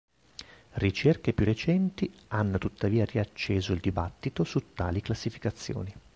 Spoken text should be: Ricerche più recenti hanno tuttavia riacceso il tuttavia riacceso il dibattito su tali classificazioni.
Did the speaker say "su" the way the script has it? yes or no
yes